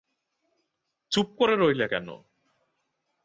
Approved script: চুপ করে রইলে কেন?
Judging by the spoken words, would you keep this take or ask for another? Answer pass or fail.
pass